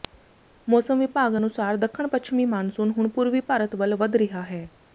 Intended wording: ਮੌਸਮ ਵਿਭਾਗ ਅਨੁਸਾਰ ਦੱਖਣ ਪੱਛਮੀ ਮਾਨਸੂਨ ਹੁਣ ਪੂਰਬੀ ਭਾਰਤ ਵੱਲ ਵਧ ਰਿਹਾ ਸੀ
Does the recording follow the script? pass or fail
fail